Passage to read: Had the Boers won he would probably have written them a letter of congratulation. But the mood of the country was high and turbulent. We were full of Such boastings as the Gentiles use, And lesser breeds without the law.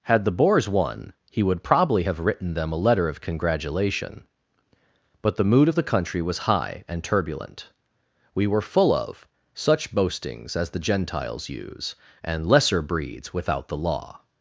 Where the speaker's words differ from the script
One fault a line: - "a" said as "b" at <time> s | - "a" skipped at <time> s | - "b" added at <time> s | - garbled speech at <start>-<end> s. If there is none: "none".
none